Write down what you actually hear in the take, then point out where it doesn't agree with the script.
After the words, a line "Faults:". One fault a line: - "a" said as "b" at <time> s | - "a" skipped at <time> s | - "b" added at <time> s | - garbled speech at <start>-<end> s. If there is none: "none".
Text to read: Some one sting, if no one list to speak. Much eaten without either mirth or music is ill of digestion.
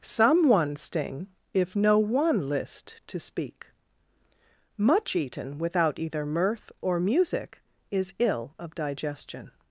Some one sting, if no one list to speak. Much eaten without either mirth or music is ill of digestion.
Faults:
none